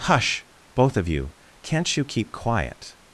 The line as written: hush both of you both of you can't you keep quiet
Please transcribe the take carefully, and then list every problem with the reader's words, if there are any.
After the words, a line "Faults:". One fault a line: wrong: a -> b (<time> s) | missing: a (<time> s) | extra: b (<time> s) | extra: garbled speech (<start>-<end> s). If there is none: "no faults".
hush both of you can't you keep quiet
Faults:
missing: both of you (1.3 s)